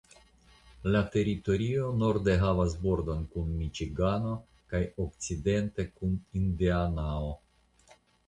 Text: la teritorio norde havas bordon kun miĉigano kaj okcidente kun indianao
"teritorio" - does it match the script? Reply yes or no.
yes